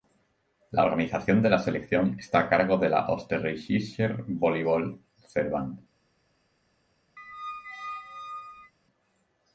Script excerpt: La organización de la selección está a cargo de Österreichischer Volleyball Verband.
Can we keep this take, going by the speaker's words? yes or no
no